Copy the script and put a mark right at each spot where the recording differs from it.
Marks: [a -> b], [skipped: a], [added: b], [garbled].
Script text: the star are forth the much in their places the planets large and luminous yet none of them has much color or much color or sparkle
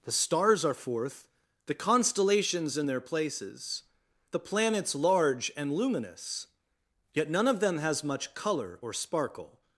the [star -> stars] are forth the [much -> constellations] in their places the planets large and luminous yet none of them has much color or [skipped: much color or] sparkle